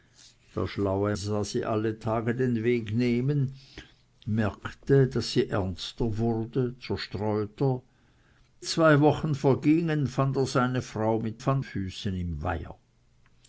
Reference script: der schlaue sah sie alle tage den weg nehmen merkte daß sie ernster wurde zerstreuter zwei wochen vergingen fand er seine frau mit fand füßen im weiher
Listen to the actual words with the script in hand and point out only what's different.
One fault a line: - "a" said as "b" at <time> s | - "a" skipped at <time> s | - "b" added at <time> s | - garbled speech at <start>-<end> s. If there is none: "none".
none